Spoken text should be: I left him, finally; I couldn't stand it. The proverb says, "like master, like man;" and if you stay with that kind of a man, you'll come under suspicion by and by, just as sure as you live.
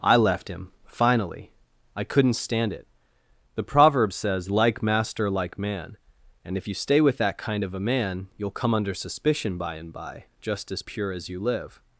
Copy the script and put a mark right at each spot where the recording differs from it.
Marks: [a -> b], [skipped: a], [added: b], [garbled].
I left him, finally; I couldn't stand it. The proverb says, "like master, like man;" and if you stay with that kind of a man, you'll come under suspicion by and by, just as [sure -> pure] as you live.